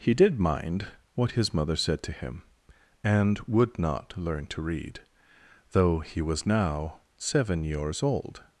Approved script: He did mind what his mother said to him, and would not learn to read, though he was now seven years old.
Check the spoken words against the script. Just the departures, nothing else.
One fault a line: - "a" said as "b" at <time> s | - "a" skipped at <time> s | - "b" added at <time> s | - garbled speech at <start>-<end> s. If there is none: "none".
none